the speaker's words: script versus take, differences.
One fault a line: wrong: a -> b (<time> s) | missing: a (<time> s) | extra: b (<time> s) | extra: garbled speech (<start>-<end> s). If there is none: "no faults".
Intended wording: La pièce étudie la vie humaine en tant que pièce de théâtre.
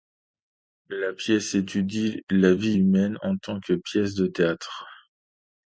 no faults